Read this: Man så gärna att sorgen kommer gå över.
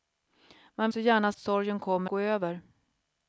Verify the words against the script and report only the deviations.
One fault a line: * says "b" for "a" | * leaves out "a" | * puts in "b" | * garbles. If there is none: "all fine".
all fine